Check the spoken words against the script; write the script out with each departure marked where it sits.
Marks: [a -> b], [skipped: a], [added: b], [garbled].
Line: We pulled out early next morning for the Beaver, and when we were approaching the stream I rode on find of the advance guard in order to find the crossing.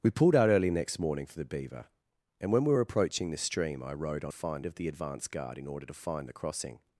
We pulled out early next morning for the Beaver, and when we were approaching the stream I rode on find of the advance guard in order to find the crossing.